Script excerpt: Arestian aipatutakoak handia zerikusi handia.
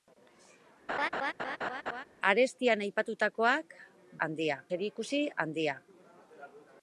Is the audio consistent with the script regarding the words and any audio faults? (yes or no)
no